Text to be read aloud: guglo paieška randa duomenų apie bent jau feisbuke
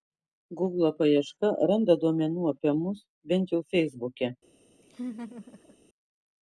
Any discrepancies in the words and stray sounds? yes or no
yes